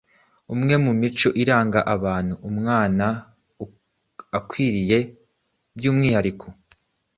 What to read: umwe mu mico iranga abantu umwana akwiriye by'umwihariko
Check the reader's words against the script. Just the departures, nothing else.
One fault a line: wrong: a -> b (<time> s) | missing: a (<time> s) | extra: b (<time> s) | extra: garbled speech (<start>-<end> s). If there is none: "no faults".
no faults